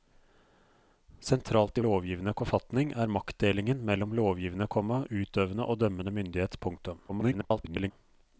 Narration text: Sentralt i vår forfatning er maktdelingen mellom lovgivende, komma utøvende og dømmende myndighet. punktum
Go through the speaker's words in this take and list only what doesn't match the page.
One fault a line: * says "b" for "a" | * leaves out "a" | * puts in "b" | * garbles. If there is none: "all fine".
* says "lovgivende" for "vår"
* garbles